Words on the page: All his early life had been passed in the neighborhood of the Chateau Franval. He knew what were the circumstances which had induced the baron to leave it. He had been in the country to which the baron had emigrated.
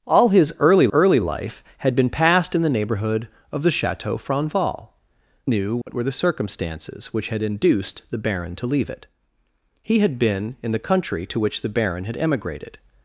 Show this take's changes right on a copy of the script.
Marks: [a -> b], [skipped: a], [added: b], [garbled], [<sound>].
All his early [added: early] life had been passed in the neighborhood of the Chateau Franval. [skipped: He] knew what [dropout] were the circumstances which had induced the baron to leave it. He had been in the country to which the baron had emigrated.